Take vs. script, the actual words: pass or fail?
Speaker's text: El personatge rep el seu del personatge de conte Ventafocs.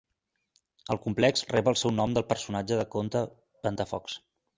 fail